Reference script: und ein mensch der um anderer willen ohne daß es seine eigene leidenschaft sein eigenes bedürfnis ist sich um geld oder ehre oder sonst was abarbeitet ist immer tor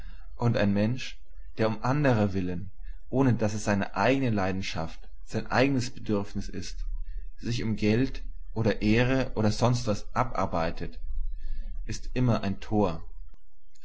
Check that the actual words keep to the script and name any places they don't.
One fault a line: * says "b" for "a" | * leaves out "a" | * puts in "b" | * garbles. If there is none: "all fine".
* puts in "ein"